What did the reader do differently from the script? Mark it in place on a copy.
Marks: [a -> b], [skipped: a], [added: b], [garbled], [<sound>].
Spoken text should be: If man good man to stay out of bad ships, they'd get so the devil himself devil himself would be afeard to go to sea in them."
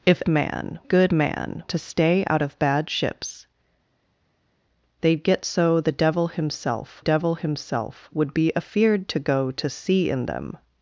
If man good man to stay out of bad ships, they'd get so the devil himself devil himself would be afeard to go to sea in them."